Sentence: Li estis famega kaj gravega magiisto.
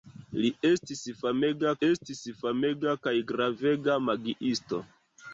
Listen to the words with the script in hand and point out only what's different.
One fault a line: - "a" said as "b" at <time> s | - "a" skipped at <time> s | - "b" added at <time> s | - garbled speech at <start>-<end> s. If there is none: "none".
- "estis famega" added at 1.9 s